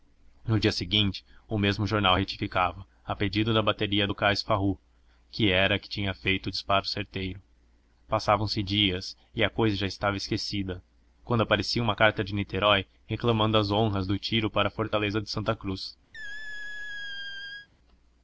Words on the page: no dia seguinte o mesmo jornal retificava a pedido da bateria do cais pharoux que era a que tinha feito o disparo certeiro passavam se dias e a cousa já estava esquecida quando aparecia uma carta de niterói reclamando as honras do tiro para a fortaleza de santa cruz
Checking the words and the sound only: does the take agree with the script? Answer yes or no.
no